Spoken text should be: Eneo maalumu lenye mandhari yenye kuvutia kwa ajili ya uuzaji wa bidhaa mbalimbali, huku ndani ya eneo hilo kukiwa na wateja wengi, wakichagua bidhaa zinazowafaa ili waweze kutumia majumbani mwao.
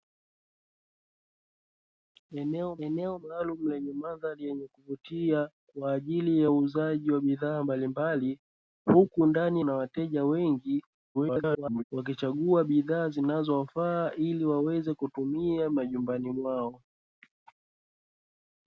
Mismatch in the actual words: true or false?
true